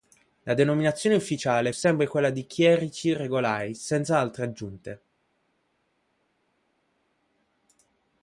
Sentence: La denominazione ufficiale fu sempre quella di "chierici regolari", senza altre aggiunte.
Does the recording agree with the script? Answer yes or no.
no